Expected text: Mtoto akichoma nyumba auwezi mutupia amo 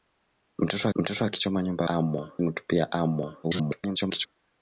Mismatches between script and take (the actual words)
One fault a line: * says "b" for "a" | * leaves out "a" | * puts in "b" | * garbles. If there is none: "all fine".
* puts in "mtoto"
* says "amo" for "auwezi"
* garbles